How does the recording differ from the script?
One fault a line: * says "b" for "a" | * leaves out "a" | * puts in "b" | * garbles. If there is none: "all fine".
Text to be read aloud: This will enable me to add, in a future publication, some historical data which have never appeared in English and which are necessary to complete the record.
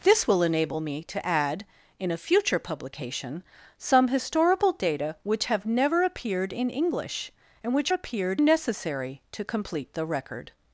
* says "appeared" for "are"